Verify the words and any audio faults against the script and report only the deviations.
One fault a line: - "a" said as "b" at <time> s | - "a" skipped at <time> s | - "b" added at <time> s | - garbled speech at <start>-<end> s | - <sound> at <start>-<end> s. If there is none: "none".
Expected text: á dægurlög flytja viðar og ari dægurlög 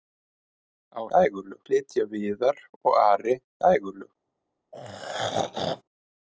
- throat clearing at 4.7-5.8 s